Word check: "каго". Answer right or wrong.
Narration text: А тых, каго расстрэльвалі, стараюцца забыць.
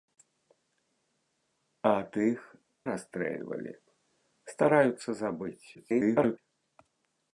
wrong